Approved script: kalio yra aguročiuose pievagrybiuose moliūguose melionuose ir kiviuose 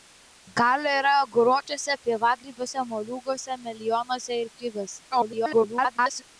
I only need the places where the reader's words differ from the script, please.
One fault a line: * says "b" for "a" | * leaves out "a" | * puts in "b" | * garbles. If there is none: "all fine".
* garbles